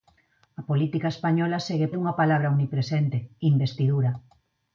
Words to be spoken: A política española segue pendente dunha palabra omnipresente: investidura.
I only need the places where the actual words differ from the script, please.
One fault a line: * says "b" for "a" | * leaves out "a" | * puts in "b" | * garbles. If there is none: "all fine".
* leaves out "pendente"